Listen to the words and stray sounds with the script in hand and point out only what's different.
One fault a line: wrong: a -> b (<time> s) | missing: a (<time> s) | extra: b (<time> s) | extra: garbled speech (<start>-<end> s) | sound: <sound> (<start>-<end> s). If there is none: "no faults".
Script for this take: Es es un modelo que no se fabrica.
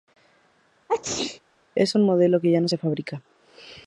sound: sneeze (0.9-1.4 s)
missing: es (1.9 s)
extra: ya (2.5 s)